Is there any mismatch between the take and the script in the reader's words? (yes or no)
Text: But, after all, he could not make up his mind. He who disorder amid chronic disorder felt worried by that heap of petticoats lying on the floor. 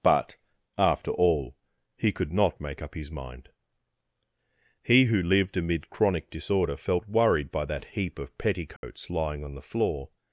yes